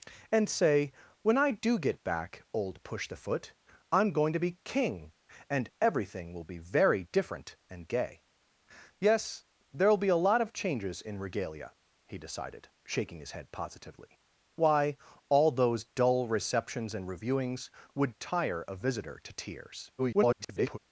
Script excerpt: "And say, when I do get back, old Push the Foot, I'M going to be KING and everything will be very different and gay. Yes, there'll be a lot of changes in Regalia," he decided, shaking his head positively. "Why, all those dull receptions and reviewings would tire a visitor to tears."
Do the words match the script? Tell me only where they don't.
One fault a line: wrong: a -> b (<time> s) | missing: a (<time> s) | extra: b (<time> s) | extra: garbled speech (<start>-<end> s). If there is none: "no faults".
extra: garbled speech (20.0-20.8 s)